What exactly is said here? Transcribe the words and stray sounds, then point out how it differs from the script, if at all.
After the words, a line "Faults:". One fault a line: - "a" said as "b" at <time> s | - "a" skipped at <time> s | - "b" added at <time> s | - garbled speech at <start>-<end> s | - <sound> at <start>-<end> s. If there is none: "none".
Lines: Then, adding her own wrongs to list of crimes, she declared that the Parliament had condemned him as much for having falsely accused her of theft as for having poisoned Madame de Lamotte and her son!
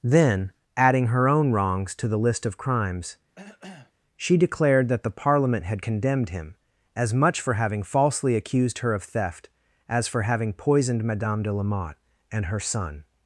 Then, adding her own wrongs to the list of crimes, she declared that the Parliament had condemned him as much for having falsely accused her of theft as for having poisoned Madame de Lamotte and her son!
Faults:
- "the" added at 2.1 s
- cough at 3.3-3.9 s